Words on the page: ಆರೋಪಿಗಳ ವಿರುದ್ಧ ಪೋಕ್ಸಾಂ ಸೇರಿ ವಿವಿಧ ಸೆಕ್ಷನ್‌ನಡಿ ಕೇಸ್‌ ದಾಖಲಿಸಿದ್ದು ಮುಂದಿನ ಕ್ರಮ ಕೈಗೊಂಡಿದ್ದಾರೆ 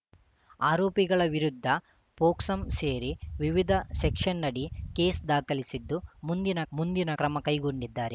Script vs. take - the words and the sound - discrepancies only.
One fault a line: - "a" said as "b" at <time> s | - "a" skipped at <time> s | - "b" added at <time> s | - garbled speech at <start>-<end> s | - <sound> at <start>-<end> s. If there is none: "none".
- "ಮುಂದಿನ" added at 6.7 s